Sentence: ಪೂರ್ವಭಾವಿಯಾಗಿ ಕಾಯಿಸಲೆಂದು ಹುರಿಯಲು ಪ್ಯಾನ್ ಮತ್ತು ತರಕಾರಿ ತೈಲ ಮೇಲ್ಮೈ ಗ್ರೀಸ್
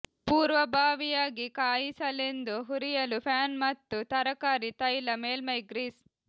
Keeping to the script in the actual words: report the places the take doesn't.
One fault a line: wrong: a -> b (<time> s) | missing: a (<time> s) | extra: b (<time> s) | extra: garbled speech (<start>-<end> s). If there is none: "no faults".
no faults